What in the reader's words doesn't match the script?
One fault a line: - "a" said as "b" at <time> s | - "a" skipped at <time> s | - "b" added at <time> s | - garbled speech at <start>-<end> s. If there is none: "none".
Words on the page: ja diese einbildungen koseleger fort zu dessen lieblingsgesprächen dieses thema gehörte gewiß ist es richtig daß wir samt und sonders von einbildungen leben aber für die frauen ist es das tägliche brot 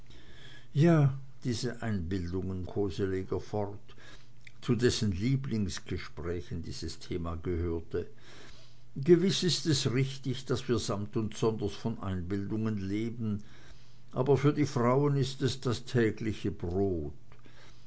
none